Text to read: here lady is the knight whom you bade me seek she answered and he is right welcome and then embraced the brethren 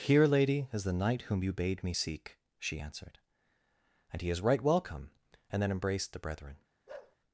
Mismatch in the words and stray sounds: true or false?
true